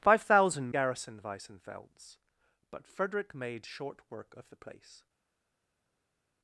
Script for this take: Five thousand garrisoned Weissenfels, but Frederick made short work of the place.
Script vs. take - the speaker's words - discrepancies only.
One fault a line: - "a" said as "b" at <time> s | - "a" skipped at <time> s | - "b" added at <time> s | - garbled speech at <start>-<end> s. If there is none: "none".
none